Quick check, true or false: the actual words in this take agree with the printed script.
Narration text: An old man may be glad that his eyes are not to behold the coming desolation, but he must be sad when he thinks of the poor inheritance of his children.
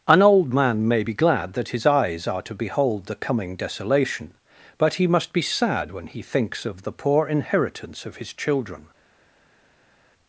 false